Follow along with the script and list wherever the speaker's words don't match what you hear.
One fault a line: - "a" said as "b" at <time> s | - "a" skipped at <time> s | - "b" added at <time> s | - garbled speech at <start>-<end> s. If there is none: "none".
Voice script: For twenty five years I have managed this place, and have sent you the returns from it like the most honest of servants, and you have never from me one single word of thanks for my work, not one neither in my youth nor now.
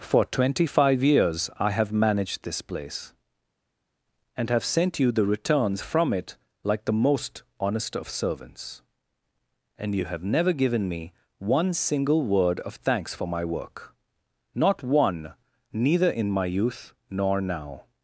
- "from" said as "given" at 10.5 s